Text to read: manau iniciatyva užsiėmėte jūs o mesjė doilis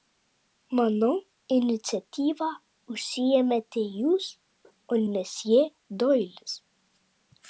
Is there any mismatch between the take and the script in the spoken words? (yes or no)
no